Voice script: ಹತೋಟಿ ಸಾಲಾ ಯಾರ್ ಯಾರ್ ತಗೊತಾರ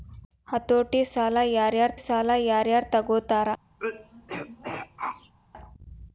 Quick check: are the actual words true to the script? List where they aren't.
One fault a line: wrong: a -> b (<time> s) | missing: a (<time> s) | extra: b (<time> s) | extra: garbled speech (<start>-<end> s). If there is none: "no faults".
extra: ಸಾಲಾ ಯಾರ್ ಯಾರ್ (2.0 s)